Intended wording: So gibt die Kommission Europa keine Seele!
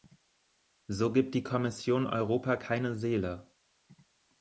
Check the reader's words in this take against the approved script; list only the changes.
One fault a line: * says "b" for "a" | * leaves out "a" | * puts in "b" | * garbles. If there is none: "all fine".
all fine